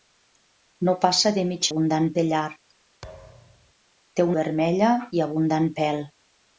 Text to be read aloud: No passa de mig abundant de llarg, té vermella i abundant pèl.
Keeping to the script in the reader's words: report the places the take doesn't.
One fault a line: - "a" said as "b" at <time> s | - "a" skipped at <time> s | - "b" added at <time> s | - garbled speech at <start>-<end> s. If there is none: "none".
none